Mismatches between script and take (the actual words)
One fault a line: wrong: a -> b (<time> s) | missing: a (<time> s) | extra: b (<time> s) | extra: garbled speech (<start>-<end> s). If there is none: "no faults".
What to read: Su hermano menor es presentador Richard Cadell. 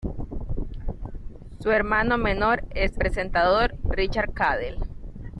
no faults